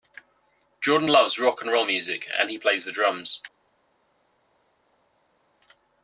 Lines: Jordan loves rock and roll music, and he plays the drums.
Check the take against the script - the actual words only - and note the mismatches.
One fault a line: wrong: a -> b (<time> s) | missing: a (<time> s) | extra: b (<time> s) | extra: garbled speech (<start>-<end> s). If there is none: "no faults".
no faults